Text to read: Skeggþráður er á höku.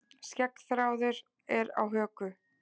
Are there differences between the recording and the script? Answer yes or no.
no